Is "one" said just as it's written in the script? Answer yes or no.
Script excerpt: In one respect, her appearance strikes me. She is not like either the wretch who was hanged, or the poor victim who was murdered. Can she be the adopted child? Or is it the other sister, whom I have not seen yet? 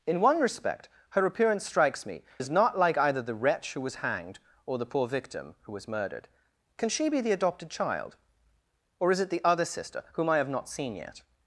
yes